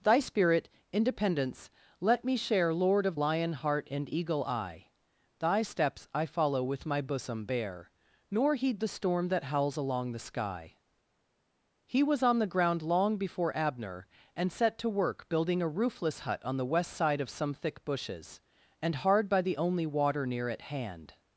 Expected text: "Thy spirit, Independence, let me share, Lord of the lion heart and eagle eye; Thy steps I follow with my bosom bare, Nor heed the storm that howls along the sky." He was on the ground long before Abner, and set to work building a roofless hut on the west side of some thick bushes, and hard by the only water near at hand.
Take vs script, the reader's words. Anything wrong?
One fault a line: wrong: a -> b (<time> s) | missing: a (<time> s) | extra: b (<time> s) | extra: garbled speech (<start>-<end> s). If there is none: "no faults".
missing: the (3.2 s)